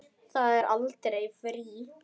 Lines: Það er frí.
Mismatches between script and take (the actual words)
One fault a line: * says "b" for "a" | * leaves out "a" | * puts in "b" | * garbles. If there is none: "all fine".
* puts in "aldrei"